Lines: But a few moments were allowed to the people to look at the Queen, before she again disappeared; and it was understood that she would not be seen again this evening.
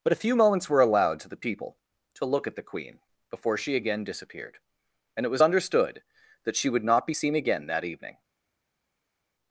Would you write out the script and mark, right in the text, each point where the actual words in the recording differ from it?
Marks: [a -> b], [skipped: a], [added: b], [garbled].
But a few moments were allowed to the people to look at the Queen, before she again disappeared; and it was understood that she would not be seen again [this -> that] evening.